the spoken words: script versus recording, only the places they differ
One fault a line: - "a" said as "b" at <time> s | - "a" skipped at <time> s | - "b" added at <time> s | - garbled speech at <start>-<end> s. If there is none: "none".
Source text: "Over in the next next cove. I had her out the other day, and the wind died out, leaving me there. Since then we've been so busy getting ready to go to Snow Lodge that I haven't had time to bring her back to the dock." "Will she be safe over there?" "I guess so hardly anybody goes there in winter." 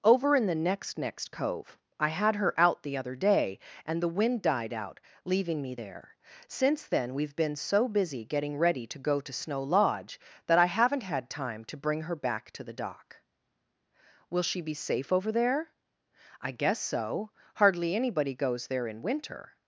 none